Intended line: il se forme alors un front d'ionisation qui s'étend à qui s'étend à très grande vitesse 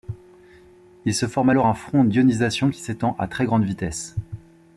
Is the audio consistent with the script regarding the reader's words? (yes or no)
no